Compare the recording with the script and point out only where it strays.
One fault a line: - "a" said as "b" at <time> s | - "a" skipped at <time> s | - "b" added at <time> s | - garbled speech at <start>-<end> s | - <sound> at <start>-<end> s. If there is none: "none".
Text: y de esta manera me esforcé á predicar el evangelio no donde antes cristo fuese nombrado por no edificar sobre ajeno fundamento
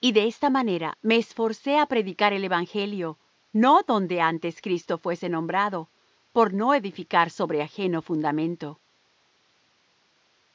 none